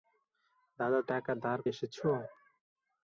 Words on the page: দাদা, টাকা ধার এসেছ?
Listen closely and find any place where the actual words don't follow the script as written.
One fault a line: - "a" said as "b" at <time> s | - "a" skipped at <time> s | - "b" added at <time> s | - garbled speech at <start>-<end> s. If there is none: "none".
none